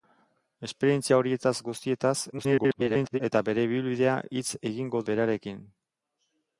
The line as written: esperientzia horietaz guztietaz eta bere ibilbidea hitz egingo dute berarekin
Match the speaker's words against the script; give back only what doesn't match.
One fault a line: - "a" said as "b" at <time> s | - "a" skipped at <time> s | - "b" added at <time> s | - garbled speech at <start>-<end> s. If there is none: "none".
- garbled speech at 2.3-3.2 s
- "dute" skipped at 5.0 s